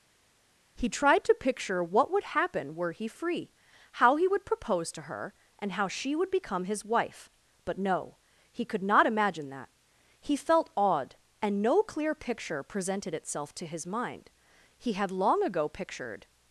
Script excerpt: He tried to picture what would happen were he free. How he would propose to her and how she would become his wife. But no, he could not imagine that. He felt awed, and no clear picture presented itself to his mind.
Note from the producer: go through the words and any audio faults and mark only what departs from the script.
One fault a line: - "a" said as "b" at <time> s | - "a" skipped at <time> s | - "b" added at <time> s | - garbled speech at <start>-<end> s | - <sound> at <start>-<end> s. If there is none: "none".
- "He had long ago pictured" added at 14.8 s